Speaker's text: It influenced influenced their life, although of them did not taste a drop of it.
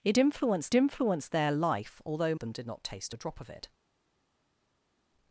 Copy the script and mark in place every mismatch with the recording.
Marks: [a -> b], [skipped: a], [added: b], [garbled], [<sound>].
It influenced influenced their life, although of them did not taste a drop of it.